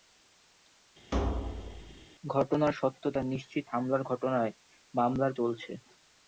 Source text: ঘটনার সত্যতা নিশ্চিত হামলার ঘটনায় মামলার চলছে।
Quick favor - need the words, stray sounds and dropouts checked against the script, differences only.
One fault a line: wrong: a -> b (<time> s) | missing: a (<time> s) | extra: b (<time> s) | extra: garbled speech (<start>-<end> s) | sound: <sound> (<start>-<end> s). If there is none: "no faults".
sound: thud (1.1-2.1 s)